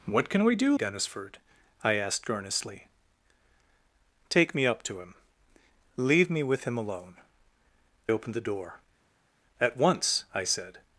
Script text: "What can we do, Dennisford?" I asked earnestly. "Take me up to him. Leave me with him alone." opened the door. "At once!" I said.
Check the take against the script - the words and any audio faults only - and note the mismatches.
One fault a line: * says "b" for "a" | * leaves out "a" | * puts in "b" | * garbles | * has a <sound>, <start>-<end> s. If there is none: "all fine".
all fine